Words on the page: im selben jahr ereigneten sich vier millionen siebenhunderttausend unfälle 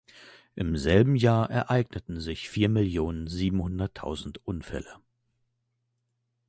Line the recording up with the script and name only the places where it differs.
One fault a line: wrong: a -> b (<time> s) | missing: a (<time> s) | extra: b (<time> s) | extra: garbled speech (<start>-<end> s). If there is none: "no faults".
no faults